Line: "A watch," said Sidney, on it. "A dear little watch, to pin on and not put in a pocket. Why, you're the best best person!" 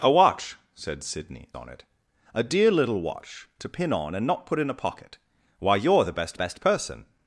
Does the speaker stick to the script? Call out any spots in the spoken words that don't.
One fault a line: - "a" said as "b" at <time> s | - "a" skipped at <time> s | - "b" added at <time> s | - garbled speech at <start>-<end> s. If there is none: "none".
none